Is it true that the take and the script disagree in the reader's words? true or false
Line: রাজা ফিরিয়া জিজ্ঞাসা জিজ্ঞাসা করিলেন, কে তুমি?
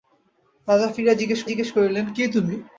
false